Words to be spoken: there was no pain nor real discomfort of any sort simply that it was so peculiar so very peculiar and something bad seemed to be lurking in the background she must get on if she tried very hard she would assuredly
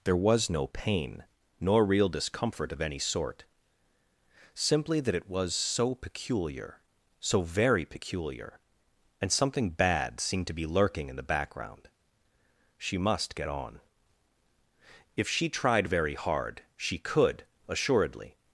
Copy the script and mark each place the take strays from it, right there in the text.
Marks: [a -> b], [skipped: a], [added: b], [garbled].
there was no pain nor real discomfort of any sort simply that it was so peculiar so very peculiar and something bad seemed to be lurking in the background she must get on if she tried very hard she [would -> could] assuredly